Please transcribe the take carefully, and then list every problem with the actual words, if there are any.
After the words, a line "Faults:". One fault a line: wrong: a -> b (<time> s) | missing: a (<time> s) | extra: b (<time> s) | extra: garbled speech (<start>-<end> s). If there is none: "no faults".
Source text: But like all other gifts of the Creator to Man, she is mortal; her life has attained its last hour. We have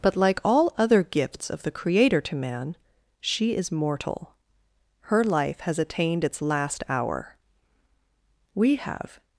But like all other gifts of the Creator to Man, she is mortal; her life has attained its last hour. We have
Faults:
no faults